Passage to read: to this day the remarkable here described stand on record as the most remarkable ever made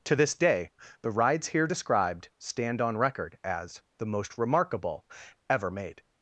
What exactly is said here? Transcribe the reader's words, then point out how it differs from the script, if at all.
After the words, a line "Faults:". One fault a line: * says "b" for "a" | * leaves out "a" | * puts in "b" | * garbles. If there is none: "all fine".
to this day the rides here described stand on record as the most remarkable ever made
Faults:
* says "rides" for "remarkable"